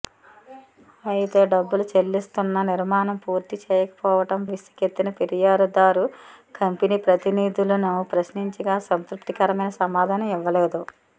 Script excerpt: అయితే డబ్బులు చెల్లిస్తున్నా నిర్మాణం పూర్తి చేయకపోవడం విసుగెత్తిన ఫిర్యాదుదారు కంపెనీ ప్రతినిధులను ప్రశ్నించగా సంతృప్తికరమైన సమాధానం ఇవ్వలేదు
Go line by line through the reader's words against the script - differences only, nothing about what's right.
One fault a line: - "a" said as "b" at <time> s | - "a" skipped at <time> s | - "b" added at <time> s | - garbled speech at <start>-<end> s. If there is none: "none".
none